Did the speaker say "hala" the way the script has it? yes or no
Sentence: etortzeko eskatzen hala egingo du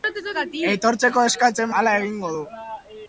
yes